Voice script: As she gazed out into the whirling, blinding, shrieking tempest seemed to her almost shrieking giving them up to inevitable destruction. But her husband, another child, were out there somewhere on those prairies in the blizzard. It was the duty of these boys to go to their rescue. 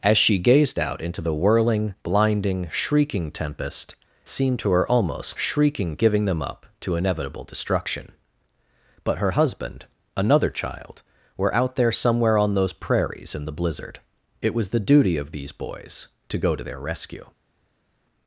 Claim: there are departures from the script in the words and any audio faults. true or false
false